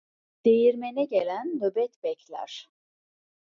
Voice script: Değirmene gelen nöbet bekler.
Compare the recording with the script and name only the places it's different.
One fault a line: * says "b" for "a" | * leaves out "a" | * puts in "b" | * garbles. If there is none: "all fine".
all fine